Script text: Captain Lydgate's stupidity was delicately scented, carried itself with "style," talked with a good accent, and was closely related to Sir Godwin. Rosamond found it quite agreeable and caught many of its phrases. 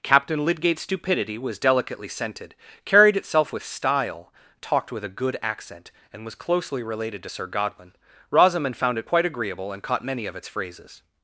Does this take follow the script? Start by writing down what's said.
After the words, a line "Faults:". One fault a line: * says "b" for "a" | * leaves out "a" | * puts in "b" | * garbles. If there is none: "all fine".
Captain Lydgate's stupidity was delicately scented, carried itself with "style," talked with a good accent, and was closely related to Sir Godwin. Rosamond found it quite agreeable and caught many of its phrases.
Faults:
all fine